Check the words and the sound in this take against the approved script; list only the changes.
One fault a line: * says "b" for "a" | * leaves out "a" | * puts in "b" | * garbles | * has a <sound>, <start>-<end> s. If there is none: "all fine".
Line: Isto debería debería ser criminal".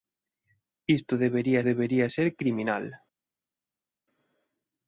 all fine